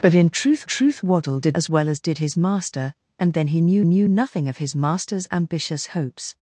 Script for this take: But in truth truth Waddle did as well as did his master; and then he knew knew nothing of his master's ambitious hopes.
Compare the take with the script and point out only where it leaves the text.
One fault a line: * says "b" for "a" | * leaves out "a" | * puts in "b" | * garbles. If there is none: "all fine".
all fine